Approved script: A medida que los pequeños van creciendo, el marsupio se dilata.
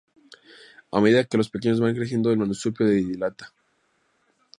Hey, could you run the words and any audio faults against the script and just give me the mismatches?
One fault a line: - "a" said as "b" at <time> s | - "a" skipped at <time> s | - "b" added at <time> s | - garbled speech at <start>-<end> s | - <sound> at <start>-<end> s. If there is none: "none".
none